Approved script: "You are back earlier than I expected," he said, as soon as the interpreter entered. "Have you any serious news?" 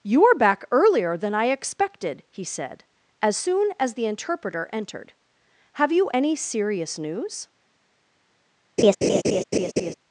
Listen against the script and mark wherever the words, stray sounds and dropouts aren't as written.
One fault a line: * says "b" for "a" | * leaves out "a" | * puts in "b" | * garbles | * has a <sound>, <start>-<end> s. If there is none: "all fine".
* has a laugh, 8.8-9.9 s